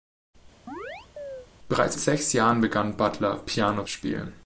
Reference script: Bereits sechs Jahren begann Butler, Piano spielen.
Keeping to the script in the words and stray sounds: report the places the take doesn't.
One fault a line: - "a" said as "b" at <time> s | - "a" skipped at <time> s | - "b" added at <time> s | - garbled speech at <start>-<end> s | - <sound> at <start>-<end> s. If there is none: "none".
- chirp at 0.7-1.5 s